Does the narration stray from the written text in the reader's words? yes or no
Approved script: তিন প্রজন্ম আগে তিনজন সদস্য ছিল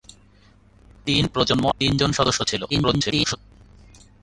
yes